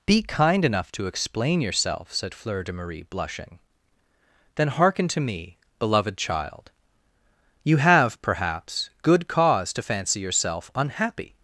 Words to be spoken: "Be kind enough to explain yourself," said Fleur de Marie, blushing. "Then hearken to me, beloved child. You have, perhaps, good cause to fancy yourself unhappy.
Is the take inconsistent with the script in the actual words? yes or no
no